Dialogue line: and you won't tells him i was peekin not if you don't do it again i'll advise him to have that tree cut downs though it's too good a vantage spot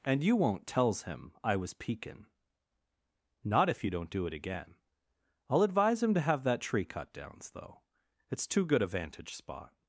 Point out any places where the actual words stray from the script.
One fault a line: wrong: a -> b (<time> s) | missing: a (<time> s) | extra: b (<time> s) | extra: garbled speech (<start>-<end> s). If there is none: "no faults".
no faults